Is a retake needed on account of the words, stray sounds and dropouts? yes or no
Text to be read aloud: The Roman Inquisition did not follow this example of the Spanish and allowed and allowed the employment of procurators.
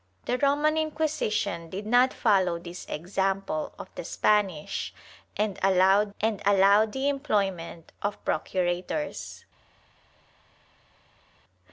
no